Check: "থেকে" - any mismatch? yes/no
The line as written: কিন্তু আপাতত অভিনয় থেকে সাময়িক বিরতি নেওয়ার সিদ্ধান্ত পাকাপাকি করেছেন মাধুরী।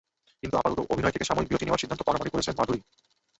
no